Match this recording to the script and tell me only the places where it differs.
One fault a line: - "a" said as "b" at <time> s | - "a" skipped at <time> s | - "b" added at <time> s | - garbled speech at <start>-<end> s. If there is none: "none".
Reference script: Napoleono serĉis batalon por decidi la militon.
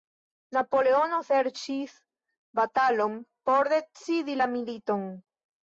none